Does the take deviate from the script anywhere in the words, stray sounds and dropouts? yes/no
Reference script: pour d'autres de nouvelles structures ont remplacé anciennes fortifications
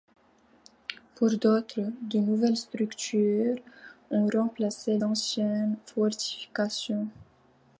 no